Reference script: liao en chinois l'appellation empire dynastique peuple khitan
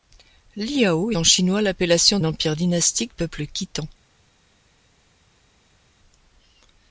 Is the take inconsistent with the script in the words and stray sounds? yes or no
no